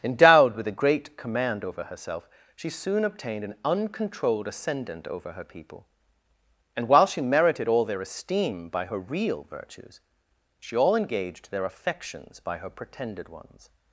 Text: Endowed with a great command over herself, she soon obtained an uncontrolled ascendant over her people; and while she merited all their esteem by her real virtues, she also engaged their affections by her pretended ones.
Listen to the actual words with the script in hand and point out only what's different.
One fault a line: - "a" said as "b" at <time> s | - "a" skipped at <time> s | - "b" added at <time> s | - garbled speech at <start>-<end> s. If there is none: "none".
- "also" said as "all" at 10.8 s